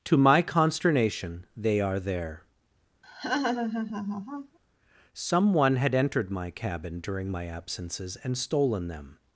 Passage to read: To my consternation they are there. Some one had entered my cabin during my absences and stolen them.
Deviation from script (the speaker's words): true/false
false